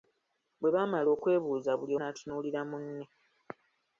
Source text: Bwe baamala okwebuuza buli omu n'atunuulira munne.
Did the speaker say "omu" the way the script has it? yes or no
no